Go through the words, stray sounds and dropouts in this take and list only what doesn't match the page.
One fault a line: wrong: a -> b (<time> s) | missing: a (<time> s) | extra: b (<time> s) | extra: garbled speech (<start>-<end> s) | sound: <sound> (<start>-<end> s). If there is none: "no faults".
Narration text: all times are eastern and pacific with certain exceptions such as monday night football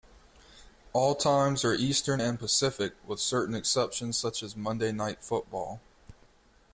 no faults